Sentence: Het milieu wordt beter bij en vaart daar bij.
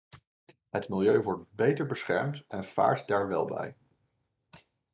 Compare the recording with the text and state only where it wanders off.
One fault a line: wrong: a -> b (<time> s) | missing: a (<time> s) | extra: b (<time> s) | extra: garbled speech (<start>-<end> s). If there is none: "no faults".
wrong: bij -> beschermd (1.9 s)
extra: wel (3.3 s)